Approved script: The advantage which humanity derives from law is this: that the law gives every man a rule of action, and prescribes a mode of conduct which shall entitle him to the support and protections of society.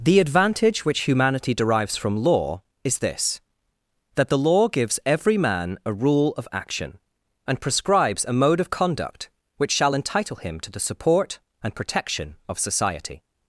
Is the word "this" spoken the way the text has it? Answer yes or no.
yes